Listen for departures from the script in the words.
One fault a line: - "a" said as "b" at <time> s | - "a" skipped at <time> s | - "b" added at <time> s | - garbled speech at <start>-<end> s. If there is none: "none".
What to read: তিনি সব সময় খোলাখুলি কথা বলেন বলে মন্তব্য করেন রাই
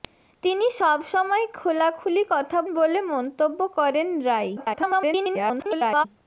- "বলেন" skipped at 2.6 s
- garbled speech at 4.6-6.1 s